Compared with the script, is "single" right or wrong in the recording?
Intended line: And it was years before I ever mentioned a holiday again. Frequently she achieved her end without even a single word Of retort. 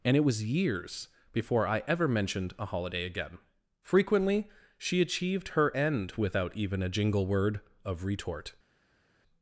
wrong